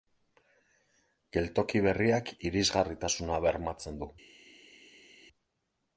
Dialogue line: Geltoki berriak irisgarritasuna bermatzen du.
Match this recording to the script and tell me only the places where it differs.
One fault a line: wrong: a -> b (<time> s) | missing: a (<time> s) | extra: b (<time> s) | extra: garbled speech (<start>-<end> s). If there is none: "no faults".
no faults